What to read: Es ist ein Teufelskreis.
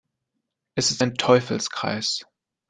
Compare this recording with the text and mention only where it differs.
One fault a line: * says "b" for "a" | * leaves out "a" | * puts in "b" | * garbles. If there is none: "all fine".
all fine